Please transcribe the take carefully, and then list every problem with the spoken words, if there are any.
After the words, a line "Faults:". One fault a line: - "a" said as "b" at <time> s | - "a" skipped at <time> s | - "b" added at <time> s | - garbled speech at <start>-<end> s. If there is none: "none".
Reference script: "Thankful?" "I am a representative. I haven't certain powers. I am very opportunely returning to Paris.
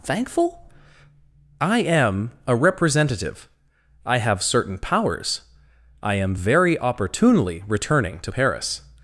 "Thankful?" "I am a representative. I have certain powers. I am very opportunely returning to Paris.
Faults:
- "haven't" said as "have" at 4.2 s